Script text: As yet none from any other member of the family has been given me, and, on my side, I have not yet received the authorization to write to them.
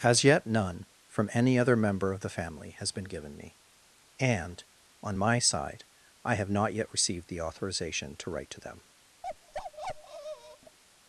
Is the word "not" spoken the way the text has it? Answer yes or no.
yes